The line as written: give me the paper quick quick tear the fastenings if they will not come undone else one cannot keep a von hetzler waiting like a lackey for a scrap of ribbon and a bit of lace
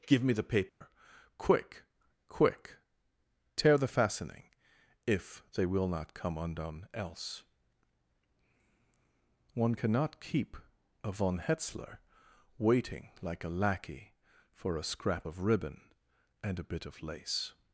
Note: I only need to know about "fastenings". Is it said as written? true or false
false